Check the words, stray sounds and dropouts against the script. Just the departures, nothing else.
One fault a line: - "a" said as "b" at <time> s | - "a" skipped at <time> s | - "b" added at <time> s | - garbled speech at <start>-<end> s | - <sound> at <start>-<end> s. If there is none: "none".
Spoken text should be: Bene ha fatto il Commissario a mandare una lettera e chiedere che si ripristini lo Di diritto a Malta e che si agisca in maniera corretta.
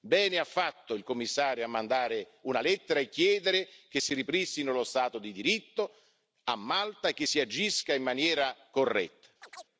- "Stato" added at 4.8 s
- chirp at 9.4-9.7 s